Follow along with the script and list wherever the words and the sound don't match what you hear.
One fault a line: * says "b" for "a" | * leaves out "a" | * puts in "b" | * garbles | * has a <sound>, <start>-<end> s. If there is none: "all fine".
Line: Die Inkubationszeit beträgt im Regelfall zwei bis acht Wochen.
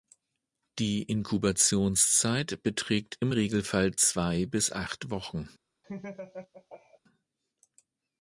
* has a laugh, 5.8-7.0 s